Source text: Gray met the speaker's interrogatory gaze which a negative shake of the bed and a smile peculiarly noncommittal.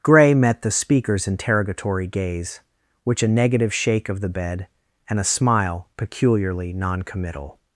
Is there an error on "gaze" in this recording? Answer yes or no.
no